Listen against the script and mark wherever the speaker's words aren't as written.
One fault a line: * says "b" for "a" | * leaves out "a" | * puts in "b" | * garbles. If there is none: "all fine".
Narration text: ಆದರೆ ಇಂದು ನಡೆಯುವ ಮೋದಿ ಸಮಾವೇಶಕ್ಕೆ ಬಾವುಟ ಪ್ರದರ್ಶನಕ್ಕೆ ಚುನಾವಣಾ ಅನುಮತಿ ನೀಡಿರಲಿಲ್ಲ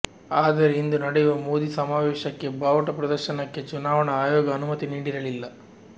* puts in "ಆಯೋಗ"